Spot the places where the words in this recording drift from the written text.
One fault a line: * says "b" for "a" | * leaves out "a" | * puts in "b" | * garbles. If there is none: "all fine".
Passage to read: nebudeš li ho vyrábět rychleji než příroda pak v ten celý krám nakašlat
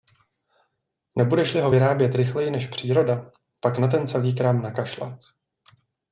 * says "na" for "v"